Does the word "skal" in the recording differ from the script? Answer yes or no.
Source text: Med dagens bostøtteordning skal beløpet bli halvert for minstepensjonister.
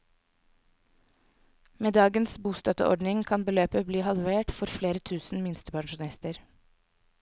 yes